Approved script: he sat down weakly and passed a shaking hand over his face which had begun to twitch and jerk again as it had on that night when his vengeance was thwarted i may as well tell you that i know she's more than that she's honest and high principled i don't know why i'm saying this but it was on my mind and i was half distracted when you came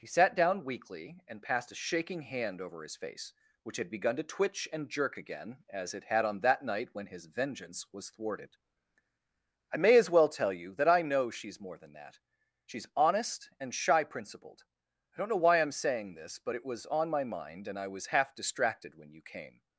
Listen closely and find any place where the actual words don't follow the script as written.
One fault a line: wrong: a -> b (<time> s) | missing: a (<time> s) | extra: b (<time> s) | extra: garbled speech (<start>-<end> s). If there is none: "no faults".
wrong: high -> shy (13.8 s)